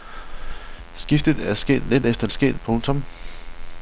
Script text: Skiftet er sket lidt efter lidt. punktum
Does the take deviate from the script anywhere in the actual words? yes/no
yes